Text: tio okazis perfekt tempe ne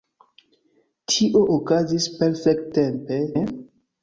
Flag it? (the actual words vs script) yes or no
no